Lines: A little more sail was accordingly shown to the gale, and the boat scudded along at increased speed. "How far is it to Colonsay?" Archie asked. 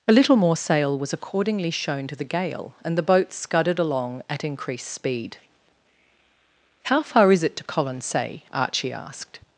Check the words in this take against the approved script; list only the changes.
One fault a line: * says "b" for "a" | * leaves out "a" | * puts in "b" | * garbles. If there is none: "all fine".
all fine